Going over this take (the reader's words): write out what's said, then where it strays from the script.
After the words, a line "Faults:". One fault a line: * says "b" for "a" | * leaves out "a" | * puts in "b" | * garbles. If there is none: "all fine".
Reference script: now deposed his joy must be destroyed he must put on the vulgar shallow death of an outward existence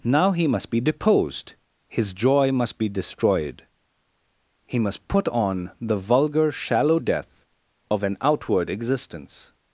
now he must be deposed his joy must be destroyed he must put on the vulgar shallow death of an outward existence
Faults:
* puts in "he must be"